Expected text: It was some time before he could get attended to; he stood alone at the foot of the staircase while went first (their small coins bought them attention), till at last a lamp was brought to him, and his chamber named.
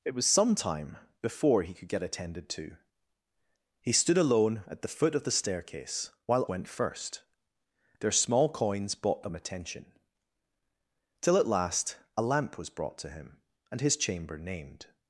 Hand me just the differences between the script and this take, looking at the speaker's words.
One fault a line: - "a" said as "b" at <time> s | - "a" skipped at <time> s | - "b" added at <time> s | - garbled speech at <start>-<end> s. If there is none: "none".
none